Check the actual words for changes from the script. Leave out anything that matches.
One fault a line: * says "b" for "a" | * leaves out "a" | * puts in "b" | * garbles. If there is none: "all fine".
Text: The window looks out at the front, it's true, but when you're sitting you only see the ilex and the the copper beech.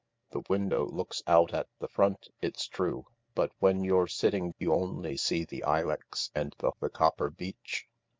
all fine